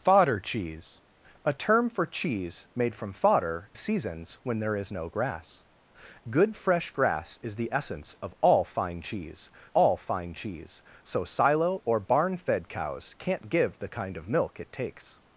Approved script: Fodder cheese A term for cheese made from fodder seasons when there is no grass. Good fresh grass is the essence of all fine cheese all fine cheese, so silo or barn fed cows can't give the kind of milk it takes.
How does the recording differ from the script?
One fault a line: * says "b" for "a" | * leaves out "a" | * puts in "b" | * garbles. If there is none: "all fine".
all fine